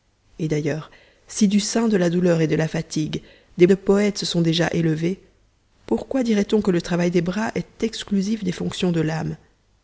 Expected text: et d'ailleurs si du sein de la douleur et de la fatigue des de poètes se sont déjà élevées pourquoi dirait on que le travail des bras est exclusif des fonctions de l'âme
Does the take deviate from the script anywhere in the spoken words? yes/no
no